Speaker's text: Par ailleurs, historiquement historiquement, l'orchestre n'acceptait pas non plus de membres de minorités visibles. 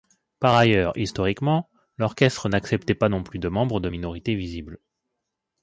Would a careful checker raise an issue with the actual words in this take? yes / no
yes